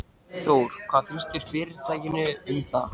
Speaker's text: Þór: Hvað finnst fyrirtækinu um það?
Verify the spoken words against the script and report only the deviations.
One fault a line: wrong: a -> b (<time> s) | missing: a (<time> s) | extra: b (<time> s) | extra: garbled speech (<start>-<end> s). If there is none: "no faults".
no faults